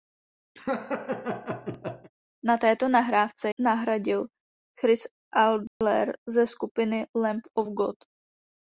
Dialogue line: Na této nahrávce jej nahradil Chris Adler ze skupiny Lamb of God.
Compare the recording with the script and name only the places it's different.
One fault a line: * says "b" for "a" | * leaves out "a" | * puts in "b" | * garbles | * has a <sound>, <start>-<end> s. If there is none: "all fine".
* has a laugh, 0.6-2.1 s
* leaves out "jej"
* has a dropout, 5.7-5.8 s